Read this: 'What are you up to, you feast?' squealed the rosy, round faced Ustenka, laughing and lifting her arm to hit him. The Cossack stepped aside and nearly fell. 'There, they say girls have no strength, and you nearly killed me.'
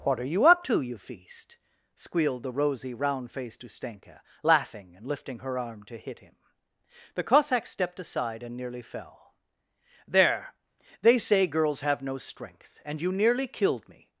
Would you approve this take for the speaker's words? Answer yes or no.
yes